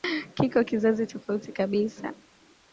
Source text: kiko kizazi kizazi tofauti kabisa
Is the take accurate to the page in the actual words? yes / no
no